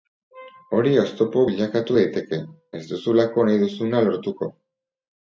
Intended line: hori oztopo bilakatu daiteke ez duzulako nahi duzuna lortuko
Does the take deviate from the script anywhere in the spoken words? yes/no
no